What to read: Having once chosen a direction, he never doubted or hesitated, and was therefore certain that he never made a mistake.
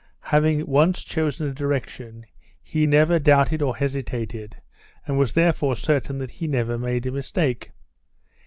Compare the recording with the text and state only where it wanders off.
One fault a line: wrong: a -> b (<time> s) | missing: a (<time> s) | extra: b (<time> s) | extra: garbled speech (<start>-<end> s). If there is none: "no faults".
no faults